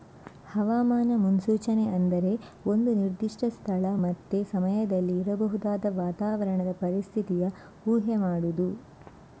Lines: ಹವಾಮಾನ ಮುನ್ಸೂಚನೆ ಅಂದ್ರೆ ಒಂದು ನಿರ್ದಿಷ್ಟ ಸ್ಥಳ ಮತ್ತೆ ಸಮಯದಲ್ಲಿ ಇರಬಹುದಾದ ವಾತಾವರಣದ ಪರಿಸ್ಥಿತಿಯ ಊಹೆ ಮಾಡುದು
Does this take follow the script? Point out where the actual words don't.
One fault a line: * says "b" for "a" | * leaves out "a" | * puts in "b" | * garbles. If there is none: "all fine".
all fine